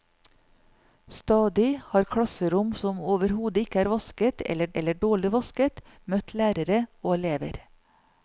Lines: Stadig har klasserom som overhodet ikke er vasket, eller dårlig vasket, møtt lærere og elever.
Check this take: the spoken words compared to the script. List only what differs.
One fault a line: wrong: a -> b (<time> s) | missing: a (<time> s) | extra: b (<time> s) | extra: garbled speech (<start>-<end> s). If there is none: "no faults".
extra: eller (4.8 s)